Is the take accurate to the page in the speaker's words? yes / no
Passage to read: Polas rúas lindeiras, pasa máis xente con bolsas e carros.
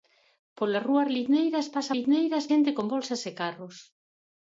no